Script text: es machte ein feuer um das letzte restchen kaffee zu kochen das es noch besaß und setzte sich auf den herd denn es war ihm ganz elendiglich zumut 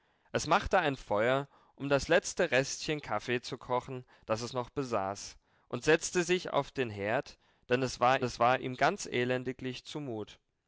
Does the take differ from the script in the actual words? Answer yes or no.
yes